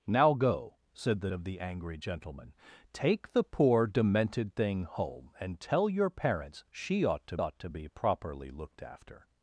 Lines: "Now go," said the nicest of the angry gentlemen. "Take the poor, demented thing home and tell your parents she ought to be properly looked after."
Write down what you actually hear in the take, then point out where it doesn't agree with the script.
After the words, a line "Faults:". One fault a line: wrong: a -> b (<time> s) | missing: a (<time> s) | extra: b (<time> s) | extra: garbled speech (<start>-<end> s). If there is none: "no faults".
"Now go," said the of the angry gentlemen. "Take the poor, demented thing home and tell your parents she ought to ought to be properly looked after."
Faults:
missing: nicest (1.3 s)
extra: ought to (7.4 s)